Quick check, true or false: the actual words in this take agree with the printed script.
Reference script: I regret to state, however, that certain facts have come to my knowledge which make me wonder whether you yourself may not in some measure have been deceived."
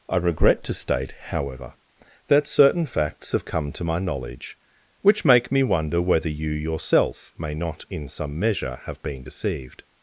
true